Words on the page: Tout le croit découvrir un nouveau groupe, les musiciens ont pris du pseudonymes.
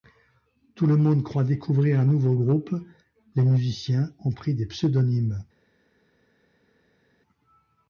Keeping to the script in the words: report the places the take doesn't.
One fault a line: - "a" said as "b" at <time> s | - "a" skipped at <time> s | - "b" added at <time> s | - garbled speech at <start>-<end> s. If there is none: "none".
- "monde" added at 1.0 s
- "du" said as "des" at 4.5 s